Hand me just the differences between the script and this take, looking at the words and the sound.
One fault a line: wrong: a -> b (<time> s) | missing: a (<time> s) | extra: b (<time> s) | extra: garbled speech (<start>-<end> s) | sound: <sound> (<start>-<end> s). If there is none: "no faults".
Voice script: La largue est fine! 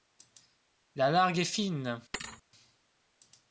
sound: thud (2.1-2.4 s)